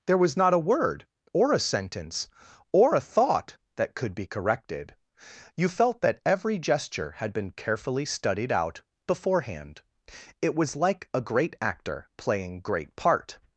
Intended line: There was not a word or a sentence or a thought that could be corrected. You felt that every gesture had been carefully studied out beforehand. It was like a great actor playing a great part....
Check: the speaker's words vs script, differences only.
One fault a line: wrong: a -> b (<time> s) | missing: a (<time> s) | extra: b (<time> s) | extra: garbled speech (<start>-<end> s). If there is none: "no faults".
missing: a (12.6 s)